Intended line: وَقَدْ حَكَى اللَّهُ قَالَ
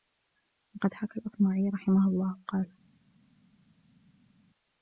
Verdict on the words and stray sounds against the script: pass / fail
fail